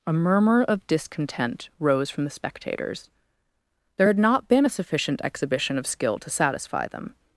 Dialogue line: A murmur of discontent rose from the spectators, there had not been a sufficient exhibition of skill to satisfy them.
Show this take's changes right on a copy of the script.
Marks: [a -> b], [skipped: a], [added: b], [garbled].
A murmur of discontent rose from the spectators, there had not been a sufficient exhibition of skill to satisfy them.